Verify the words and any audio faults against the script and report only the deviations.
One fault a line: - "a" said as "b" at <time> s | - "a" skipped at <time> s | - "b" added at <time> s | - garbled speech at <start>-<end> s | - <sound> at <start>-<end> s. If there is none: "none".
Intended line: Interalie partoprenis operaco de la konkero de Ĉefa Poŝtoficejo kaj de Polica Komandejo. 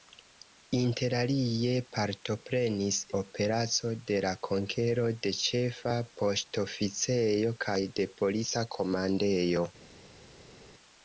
none